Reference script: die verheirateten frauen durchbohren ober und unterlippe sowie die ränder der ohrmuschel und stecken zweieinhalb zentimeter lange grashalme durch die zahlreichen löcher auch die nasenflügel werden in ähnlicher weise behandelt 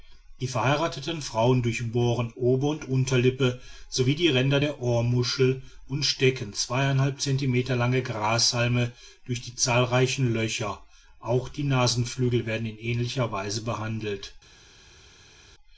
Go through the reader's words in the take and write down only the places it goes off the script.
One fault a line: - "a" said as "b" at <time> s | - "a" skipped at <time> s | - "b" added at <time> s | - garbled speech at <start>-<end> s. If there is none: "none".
none